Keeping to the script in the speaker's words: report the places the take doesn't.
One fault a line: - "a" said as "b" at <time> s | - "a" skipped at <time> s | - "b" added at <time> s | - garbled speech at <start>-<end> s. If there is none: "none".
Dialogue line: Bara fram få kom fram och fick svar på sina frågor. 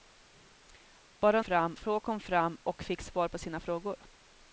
none